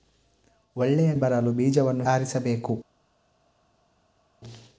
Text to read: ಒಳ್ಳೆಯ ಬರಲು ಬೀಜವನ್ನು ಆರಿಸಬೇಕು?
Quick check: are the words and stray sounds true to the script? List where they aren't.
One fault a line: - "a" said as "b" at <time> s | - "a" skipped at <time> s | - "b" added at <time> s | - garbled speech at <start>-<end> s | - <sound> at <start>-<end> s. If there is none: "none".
none